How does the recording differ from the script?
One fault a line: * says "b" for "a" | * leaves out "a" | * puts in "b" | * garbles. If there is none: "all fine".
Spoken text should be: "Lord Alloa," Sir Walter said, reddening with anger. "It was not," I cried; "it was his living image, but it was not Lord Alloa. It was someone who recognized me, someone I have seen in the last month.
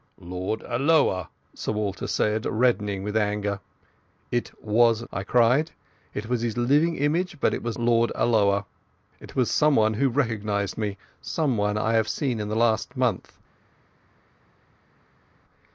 * leaves out "not"
* leaves out "not"